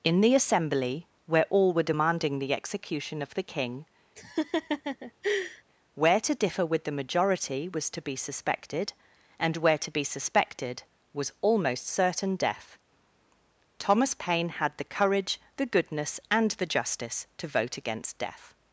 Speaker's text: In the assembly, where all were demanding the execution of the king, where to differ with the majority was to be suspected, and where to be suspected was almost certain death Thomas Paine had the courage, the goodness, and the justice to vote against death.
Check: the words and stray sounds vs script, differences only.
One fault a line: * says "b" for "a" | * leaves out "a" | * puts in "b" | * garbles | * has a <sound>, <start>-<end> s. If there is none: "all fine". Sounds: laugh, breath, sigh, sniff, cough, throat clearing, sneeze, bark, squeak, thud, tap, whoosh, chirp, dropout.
* has a laugh, 4.2-5.6 s